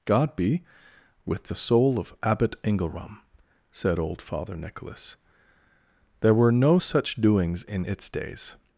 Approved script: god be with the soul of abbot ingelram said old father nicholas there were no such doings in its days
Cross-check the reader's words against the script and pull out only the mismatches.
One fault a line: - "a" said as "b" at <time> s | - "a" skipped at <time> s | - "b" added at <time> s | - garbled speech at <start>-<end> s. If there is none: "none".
none